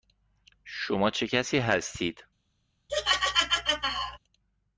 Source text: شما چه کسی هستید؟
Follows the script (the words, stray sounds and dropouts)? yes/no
no